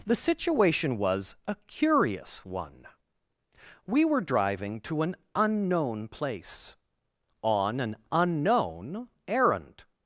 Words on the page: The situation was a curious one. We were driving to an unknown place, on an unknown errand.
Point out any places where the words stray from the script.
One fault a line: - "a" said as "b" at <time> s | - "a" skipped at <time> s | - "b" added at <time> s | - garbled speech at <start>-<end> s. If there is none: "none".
none